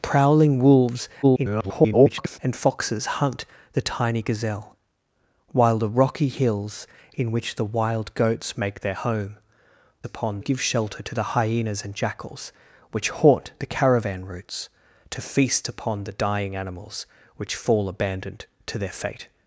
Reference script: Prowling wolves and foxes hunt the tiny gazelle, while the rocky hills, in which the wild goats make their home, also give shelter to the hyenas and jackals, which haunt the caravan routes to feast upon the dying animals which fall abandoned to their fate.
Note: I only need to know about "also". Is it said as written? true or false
false